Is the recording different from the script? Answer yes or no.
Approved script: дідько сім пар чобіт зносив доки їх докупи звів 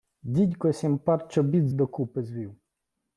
yes